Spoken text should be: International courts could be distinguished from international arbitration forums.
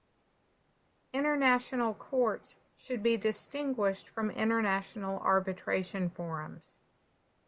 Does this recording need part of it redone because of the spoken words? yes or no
yes